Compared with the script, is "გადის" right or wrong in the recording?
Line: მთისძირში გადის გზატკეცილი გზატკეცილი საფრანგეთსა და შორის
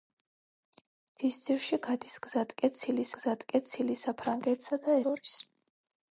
right